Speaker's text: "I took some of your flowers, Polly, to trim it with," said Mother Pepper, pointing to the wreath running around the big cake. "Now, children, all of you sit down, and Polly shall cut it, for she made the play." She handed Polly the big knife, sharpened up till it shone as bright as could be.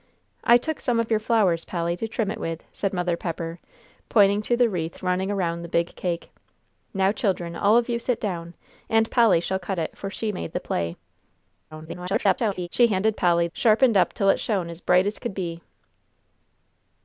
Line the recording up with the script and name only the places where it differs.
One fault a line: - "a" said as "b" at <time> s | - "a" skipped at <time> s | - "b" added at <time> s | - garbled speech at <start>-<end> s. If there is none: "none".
- garbled speech at 11.7-12.7 s
- "the big knife" skipped at 13.5 s